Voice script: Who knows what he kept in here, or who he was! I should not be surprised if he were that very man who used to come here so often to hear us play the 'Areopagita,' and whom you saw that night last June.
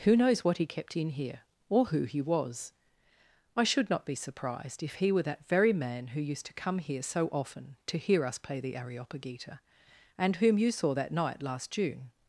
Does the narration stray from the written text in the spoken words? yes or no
no